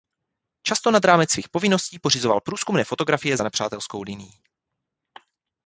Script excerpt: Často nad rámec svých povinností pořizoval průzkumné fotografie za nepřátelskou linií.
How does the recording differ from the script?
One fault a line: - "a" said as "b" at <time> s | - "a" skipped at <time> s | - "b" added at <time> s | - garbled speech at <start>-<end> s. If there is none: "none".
none